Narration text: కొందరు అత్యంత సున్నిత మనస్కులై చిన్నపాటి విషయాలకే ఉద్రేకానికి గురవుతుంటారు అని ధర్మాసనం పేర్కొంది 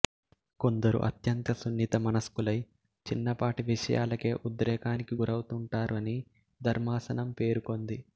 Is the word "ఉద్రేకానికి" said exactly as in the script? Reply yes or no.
yes